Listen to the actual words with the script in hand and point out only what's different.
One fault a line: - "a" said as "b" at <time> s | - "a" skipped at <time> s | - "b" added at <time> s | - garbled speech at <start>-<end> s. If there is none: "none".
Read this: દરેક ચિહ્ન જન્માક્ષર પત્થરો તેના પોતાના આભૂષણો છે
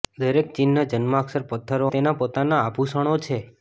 none